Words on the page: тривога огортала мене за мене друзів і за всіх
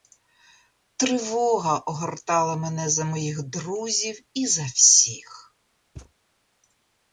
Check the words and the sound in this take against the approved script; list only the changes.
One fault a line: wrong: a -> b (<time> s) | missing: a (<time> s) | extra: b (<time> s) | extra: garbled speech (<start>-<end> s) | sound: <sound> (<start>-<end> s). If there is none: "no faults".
wrong: мене -> моїх (3.0 s)
sound: thud (6.0-6.1 s)